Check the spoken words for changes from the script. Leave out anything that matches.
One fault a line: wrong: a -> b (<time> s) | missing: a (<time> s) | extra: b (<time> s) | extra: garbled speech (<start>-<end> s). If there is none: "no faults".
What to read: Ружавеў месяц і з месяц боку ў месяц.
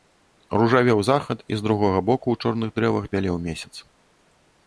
wrong: месяц -> захад (1.1 s)
wrong: месяц -> другога (1.7 s)
extra: чорных дрэвах бялеў (2.5 s)